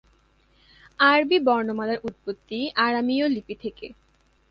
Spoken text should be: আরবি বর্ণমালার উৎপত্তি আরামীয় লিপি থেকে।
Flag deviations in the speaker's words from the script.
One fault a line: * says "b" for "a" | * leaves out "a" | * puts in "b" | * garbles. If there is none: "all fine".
all fine